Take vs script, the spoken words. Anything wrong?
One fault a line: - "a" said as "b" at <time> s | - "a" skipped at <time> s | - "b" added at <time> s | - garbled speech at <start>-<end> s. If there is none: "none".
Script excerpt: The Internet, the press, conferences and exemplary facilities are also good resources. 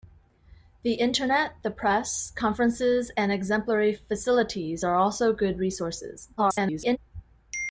- garbled speech at 6.4-7.0 s